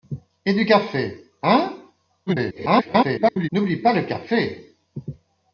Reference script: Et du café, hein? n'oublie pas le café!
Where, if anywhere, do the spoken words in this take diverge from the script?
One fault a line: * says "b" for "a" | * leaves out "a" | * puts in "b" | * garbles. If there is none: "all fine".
* garbles